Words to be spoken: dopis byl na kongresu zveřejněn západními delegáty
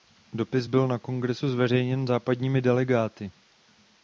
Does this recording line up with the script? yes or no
yes